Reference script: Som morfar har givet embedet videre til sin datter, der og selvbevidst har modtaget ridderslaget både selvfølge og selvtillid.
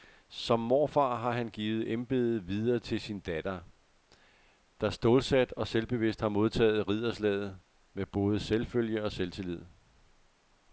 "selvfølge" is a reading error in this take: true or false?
false